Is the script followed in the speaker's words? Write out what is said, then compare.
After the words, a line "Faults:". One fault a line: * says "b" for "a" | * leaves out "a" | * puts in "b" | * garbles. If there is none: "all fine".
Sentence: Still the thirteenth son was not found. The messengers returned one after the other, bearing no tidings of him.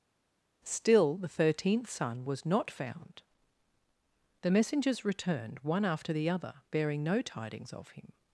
Still the thirteenth son was not found. The messengers returned one after the other, bearing no tidings of him.
Faults:
all fine